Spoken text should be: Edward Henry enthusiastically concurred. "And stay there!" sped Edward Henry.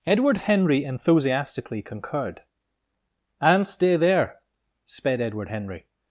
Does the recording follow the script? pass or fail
pass